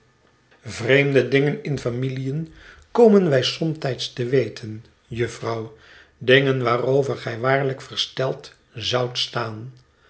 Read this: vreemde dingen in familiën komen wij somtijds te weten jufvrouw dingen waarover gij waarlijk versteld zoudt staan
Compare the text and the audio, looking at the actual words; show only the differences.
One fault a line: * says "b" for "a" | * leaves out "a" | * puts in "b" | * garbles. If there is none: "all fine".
all fine